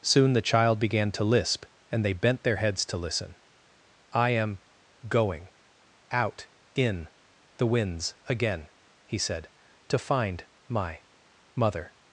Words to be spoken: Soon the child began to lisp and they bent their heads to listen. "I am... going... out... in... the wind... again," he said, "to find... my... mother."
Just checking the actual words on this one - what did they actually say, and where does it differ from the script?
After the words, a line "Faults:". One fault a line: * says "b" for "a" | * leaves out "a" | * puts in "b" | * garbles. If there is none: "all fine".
Soon the child began to lisp and they bent their heads to listen. "I am... going... out... in... the winds... again," he said, "to find... my... mother."
Faults:
* says "winds" for "wind"